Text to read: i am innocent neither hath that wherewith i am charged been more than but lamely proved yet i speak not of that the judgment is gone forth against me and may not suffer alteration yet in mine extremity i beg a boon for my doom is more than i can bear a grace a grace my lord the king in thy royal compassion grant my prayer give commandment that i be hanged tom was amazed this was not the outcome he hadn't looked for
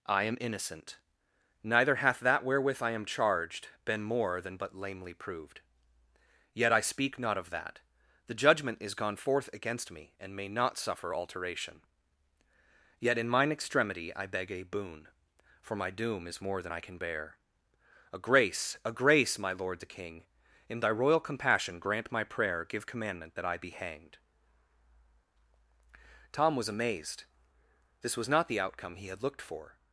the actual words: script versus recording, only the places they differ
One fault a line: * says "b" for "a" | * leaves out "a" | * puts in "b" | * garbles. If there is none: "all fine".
* says "had" for "hadn't"